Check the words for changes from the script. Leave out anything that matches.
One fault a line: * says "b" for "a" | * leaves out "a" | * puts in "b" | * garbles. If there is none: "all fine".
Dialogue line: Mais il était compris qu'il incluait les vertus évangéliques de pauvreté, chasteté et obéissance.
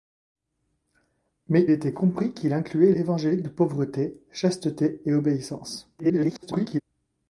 * leaves out "il"
* leaves out "les vertus"
* garbles